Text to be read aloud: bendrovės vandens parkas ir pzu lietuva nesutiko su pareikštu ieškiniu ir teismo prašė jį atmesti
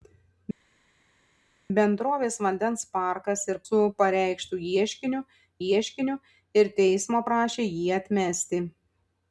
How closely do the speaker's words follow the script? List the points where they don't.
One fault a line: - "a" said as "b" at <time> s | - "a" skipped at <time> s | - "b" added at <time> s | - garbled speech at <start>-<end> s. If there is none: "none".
- "pzu lietuva nesutiko" skipped at 3.6 s
- "ieškiniu" added at 5.7 s